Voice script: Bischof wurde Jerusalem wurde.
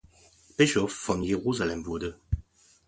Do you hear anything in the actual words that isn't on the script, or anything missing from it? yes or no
yes